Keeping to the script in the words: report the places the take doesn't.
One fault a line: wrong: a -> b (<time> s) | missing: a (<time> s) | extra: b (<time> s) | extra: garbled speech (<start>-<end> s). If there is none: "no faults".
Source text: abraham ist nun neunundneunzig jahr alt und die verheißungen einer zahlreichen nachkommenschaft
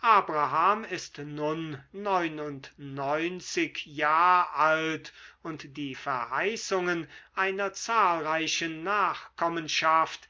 no faults